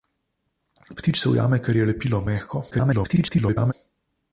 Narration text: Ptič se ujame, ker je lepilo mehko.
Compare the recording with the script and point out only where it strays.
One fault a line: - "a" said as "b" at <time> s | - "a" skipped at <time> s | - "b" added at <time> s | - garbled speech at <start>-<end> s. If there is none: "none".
- garbled speech at 2.7-3.7 s